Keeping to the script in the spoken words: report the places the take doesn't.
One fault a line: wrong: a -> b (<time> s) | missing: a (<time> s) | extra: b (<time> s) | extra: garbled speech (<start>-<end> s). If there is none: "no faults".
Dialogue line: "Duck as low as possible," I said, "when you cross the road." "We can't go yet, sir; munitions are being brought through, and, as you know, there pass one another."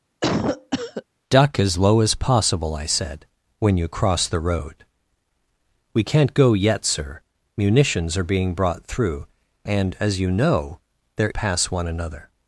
no faults